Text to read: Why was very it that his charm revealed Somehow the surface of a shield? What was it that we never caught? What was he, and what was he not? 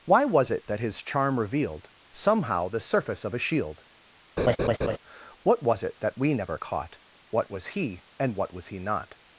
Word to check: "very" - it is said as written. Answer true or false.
false